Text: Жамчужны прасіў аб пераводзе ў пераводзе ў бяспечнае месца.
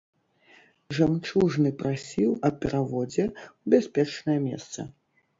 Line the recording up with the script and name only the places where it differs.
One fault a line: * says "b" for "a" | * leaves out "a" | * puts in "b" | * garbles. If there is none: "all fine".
* leaves out "пераводзе ў"